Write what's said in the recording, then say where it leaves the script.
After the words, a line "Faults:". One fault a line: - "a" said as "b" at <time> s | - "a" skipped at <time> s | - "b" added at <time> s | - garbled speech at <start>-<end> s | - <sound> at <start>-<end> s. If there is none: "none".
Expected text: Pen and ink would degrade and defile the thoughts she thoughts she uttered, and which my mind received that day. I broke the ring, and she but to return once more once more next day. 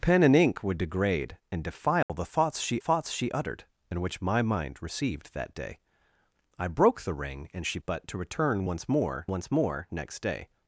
Pen and ink would degrade and defile the thoughts she thoughts she uttered, and which my mind received that day. I broke the ring, and she but to return once more once more next day.
Faults:
- dropout at 2.0-2.1 s